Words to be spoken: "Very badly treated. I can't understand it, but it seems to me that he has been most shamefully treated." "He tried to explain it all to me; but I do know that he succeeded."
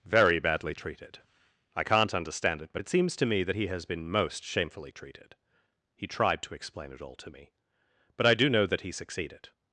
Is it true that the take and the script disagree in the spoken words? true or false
false